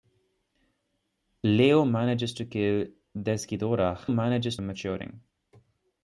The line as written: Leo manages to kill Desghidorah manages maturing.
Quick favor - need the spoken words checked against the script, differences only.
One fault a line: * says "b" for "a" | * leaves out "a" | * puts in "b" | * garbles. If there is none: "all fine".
all fine